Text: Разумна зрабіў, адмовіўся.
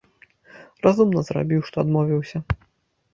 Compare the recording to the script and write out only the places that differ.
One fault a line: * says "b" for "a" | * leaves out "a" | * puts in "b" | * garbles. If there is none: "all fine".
* puts in "што"